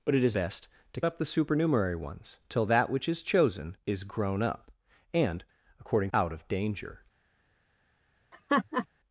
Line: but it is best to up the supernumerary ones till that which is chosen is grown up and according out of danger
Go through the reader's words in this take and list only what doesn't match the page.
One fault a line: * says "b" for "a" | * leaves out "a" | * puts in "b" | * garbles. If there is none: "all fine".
all fine